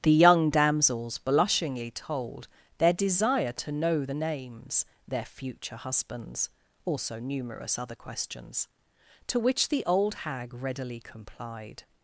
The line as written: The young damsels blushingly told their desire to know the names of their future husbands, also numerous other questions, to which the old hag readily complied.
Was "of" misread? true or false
true